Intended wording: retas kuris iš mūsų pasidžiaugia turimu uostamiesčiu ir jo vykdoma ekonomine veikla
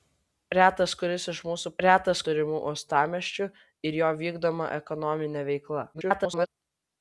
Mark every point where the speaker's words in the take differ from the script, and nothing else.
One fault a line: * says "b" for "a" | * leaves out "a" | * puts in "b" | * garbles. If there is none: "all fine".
* says "retas" for "pasidžiaugia"
* garbles